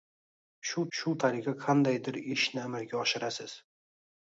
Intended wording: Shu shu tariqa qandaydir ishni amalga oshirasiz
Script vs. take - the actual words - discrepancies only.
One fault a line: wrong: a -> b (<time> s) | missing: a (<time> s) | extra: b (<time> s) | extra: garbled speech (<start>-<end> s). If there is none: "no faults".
no faults